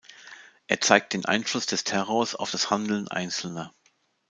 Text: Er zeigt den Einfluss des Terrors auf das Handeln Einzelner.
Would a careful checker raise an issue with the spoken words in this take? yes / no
no